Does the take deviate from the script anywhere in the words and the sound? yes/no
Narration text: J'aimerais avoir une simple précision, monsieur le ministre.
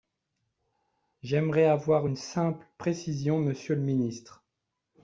no